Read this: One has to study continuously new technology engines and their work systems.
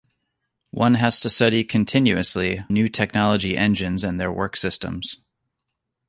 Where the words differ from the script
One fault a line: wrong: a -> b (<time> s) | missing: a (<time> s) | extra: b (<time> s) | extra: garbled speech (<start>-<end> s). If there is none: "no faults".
no faults